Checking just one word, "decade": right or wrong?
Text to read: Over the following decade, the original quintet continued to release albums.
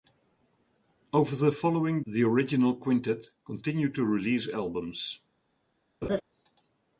wrong